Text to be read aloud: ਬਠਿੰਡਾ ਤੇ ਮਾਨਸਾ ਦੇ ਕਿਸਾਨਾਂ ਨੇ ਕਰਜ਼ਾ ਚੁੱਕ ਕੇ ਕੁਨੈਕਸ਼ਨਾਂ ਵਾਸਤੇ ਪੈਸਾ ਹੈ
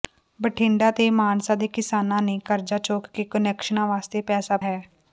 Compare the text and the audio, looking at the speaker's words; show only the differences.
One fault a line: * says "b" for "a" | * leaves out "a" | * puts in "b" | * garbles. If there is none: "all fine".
all fine